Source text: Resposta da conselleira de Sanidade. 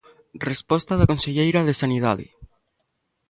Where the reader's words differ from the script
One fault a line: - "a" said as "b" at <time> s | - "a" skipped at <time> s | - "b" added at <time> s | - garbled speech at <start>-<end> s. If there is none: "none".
none